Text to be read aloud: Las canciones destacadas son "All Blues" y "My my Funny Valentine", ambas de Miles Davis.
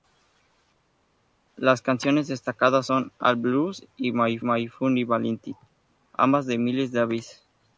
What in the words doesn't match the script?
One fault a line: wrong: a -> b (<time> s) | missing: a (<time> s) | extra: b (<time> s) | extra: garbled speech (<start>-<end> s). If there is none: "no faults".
no faults